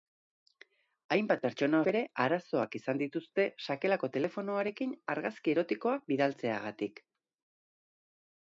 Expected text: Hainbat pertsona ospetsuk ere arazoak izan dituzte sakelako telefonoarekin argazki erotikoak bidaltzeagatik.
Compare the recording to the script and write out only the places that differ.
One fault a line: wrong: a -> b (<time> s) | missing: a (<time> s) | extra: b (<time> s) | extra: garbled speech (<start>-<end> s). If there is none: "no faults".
missing: ospetsuk (1.8 s)